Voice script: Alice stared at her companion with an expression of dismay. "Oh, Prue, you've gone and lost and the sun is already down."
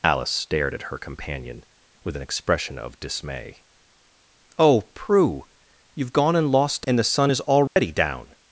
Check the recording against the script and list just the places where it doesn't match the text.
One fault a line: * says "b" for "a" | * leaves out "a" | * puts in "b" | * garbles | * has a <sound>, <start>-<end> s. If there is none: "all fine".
* has a dropout, 7.7-7.8 s